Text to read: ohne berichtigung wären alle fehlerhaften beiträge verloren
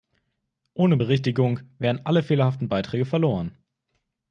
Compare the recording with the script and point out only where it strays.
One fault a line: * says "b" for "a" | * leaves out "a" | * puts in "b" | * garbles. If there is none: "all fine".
all fine